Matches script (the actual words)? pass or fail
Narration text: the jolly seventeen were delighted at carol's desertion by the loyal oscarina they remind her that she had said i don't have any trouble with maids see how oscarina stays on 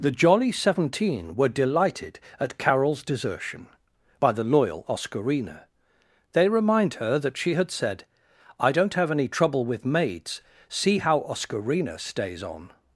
pass